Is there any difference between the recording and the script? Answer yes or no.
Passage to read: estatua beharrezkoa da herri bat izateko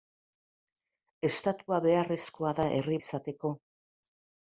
yes